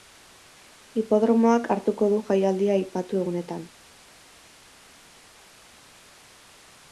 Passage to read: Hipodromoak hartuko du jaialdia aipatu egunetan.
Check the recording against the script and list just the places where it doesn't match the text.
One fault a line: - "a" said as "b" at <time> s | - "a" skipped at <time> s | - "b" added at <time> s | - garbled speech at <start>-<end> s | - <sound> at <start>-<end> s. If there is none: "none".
none